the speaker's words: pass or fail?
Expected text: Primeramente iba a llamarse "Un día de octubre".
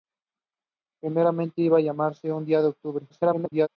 fail